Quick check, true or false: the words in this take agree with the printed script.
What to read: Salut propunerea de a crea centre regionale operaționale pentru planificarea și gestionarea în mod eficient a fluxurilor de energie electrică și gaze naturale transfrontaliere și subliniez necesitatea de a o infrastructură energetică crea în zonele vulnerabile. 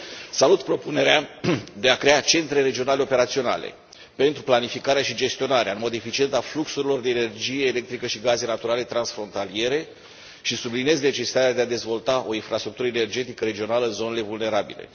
false